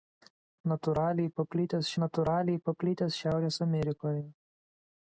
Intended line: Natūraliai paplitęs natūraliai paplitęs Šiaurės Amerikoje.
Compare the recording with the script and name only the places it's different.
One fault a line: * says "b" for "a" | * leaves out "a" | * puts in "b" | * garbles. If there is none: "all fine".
all fine